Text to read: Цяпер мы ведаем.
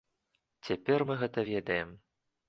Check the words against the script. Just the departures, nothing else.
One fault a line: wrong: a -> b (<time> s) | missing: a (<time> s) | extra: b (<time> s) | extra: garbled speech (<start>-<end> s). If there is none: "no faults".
extra: гэта (1.2 s)